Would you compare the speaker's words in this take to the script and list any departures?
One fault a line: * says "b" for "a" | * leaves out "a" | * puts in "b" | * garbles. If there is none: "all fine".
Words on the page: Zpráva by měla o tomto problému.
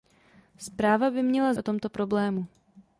all fine